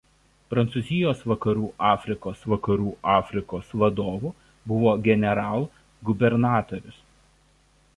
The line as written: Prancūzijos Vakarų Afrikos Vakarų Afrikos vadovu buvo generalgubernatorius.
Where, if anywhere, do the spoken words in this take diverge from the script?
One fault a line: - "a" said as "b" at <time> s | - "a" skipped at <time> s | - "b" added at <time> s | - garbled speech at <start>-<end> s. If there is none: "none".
none